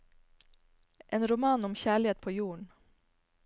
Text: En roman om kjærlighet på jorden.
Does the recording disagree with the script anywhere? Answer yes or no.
no